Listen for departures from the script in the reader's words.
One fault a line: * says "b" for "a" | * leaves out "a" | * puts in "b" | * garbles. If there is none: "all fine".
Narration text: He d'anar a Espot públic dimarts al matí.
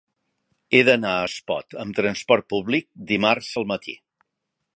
* puts in "amb trasport"